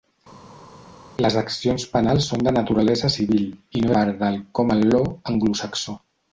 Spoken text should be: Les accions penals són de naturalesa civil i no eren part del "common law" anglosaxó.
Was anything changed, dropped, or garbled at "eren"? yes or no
yes